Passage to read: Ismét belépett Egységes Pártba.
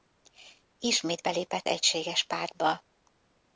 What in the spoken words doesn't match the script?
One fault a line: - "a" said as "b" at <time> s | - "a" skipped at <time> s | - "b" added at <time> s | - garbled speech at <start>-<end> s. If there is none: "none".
none